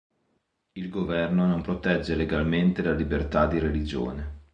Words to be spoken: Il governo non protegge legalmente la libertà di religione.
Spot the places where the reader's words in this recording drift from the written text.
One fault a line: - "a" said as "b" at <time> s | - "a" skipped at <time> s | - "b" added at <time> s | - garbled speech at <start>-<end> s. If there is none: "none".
none